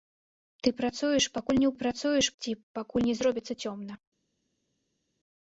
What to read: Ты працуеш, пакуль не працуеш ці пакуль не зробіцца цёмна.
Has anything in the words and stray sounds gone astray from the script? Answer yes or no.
no